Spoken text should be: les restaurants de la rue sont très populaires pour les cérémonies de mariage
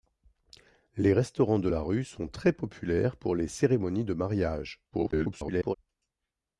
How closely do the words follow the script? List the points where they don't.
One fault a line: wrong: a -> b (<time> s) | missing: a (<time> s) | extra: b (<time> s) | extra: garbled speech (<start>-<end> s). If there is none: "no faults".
extra: garbled speech (4.9-5.8 s)